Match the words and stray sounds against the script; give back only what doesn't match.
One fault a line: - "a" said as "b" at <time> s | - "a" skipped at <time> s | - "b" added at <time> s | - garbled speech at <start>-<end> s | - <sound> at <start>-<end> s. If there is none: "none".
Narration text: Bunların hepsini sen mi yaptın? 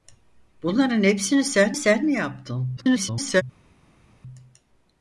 - "sen" added at 1.7 s
- garbled speech at 2.8-3.4 s